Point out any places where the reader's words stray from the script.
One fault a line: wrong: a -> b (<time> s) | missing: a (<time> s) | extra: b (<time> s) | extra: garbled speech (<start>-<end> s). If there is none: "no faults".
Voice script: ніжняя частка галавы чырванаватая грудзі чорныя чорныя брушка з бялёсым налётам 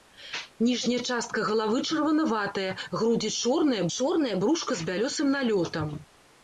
no faults